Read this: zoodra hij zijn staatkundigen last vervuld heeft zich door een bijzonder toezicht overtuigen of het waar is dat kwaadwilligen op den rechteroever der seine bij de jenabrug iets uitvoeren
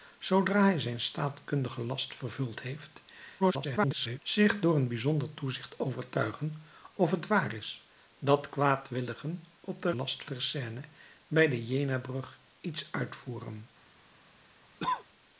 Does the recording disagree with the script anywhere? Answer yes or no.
yes